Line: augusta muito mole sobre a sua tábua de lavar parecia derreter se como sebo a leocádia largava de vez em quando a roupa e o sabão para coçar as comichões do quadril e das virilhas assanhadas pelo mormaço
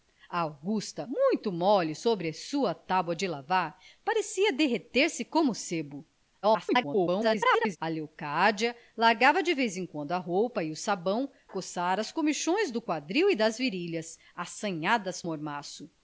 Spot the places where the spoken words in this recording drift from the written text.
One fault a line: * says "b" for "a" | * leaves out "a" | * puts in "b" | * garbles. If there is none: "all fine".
* garbles
* leaves out "para"
* leaves out "pelo"